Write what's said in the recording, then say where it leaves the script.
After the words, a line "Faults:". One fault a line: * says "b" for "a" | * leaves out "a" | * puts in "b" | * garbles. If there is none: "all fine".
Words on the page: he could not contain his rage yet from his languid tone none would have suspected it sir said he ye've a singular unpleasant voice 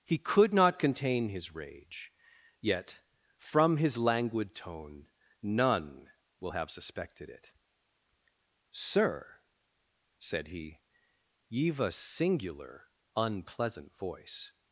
he could not contain his rage yet from his languid tone none will have suspected it sir said he ye've a singular unpleasant voice
Faults:
* says "will" for "would"